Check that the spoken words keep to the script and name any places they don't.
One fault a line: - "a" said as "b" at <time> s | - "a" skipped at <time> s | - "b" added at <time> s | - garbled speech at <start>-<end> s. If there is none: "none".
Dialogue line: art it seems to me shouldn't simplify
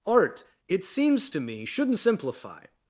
none